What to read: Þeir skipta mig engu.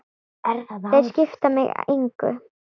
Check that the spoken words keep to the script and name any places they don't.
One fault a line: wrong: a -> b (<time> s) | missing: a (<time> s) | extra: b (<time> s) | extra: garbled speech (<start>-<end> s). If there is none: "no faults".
no faults